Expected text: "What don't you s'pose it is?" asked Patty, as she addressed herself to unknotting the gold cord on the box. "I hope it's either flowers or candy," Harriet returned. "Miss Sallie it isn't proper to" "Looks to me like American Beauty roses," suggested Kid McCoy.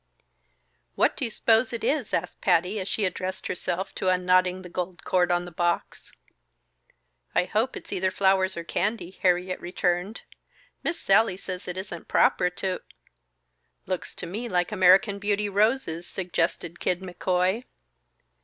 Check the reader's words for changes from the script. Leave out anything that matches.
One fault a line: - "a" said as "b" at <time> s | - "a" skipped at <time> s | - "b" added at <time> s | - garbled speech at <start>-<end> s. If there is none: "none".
- "don't" said as "do" at 1.1 s
- "says" added at 11.4 s